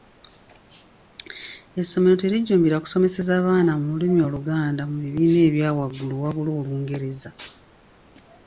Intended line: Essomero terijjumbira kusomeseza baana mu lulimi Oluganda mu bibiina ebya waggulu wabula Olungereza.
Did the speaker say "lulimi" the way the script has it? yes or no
yes